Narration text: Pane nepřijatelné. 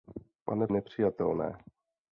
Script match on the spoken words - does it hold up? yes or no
yes